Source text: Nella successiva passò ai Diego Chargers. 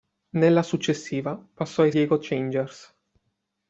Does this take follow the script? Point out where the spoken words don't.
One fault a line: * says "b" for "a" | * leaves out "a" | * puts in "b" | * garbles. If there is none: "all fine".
all fine